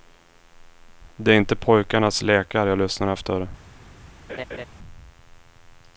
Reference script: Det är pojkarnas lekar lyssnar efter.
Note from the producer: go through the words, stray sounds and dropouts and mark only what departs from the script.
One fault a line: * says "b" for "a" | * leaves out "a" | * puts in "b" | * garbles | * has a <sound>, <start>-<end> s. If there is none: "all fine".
* puts in "inte"
* puts in "jag"
* has a laugh, 4.3-4.6 s